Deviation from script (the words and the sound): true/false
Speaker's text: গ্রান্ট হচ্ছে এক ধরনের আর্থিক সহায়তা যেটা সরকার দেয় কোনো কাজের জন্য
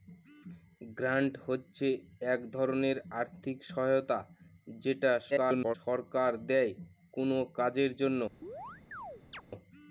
true